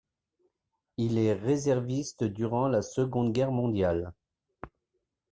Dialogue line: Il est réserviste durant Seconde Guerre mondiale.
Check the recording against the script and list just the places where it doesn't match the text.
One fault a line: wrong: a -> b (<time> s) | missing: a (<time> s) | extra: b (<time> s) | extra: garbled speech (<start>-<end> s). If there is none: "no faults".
extra: la (2.7 s)